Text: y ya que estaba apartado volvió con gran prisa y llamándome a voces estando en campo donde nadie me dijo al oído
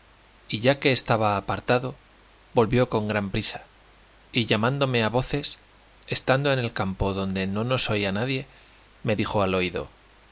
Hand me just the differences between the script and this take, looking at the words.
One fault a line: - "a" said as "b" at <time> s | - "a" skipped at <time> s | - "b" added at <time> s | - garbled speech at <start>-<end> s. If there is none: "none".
- "el" added at 6.6 s
- "no nos oía" added at 7.5 s